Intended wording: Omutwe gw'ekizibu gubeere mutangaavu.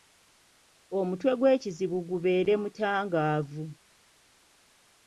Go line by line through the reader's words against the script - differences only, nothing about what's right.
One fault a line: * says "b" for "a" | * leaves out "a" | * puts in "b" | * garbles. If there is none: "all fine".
all fine